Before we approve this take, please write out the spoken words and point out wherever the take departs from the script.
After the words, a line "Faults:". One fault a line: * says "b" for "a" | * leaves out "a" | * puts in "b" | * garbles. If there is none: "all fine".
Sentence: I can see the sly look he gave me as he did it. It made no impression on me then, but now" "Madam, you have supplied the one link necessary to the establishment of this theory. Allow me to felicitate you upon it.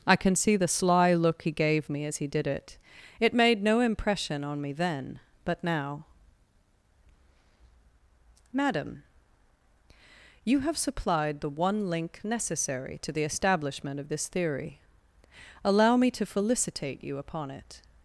I can see the sly look he gave me as he did it. It made no impression on me then, but now" "Madam, you have supplied the one link necessary to the establishment of this theory. Allow me to felicitate you upon it.
Faults:
all fine